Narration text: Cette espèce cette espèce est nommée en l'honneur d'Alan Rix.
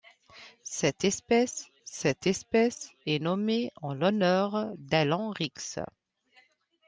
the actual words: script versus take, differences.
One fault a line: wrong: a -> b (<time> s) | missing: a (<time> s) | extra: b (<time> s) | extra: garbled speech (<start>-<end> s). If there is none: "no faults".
no faults